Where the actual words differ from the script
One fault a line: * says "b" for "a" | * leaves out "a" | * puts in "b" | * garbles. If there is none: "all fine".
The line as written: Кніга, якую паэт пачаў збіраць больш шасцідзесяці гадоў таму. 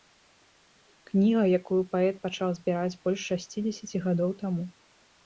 all fine